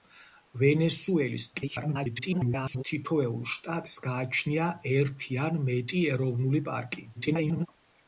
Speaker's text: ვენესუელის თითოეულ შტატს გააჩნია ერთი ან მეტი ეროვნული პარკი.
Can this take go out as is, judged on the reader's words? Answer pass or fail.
fail